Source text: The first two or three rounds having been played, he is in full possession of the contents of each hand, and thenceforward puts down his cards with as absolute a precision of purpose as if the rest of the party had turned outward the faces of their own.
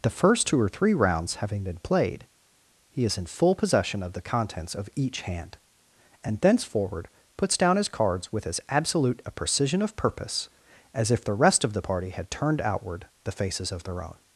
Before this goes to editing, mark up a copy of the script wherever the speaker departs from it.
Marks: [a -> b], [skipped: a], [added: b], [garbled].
The first two or three rounds having been played, he is in full possession of the contents of each hand, and thenceforward puts down his cards with as absolute a precision of purpose as if the rest of the party had turned outward the faces of their own.